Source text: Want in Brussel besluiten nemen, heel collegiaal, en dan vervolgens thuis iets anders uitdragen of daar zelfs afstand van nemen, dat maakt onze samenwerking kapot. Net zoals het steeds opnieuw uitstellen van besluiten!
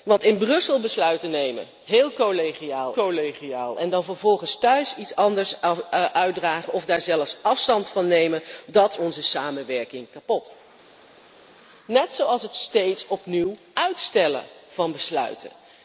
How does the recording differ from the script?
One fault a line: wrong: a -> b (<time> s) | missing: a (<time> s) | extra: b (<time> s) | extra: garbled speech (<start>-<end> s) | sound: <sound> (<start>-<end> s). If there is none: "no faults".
extra: collegiaal (2.9 s)
missing: maakt (9.0 s)